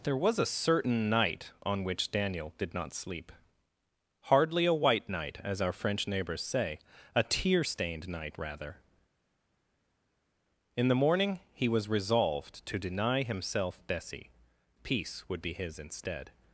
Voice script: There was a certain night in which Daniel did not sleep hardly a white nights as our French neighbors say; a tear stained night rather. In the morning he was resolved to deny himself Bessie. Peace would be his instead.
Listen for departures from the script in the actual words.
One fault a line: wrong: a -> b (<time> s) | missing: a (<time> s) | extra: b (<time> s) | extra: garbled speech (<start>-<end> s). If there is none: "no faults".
wrong: in -> on (1.6 s)
wrong: nights -> night (5.1 s)